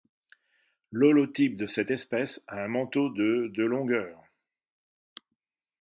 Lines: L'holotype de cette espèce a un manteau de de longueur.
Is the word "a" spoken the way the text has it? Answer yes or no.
yes